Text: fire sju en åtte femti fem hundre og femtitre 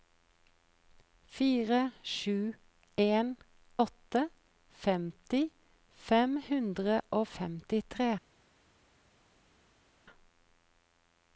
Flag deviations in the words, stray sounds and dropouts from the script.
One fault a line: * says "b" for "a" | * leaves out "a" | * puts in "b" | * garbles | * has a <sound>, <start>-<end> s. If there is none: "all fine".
all fine